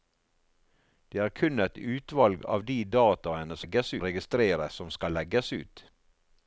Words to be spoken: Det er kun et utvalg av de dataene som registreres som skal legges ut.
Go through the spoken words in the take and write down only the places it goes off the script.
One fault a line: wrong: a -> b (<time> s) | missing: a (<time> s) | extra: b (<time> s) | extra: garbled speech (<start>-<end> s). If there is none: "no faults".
wrong: som -> legges (3.6 s)